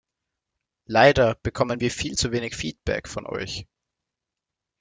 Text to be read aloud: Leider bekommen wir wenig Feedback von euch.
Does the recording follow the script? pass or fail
fail